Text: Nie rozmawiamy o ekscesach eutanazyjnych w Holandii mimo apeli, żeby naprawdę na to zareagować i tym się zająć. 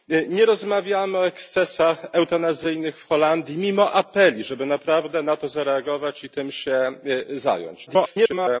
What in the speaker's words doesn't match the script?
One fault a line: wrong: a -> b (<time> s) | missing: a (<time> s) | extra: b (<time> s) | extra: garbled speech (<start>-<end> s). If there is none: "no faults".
extra: garbled speech (7.9-8.6 s)